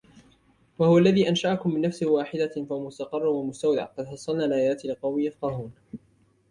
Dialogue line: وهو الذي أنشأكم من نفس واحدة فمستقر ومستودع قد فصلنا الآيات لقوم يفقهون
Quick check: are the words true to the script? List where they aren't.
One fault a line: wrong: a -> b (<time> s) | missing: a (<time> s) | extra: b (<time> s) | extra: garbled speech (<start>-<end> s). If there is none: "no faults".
no faults